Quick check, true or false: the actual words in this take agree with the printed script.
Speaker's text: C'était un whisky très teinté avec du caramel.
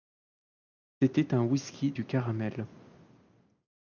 false